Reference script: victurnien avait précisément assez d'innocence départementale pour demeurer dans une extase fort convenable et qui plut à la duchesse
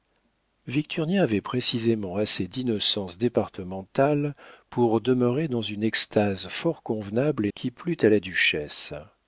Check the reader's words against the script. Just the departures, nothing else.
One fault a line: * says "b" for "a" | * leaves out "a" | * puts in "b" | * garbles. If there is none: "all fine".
all fine